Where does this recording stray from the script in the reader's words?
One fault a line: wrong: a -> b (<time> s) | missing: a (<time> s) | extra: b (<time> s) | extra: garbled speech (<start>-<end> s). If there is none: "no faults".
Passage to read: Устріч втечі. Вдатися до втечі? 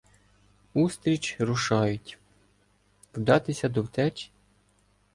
wrong: втечі -> рушають (1.4 s)